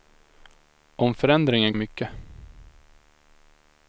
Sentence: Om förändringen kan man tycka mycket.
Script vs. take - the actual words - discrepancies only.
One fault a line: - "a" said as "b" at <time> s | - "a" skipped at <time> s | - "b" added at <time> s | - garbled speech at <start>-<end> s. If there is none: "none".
- "kan man tycka" skipped at 1.8 s